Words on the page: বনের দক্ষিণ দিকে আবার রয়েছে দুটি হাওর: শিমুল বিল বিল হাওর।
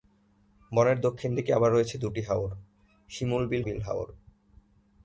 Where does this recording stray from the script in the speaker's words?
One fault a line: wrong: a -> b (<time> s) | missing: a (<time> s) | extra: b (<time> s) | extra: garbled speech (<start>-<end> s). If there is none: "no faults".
no faults